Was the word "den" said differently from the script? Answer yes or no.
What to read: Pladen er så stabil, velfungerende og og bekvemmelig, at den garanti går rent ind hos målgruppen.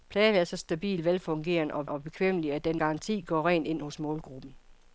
no